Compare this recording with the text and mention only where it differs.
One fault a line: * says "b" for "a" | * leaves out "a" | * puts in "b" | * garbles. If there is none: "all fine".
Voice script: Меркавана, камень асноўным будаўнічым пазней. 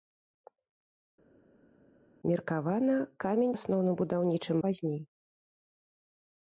all fine